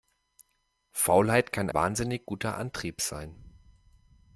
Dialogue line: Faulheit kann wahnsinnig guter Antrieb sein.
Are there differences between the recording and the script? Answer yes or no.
no